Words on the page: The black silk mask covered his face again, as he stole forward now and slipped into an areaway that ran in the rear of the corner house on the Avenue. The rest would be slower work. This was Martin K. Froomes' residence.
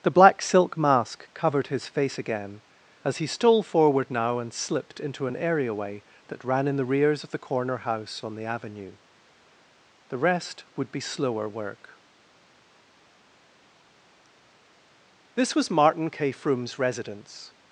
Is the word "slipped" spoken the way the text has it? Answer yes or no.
yes